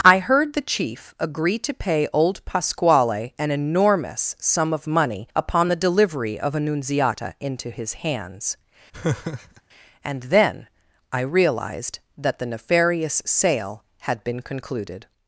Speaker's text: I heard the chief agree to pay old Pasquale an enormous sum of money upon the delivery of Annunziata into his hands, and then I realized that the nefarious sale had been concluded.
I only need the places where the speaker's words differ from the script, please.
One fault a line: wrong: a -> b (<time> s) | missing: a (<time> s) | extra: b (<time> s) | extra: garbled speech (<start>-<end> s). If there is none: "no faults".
no faults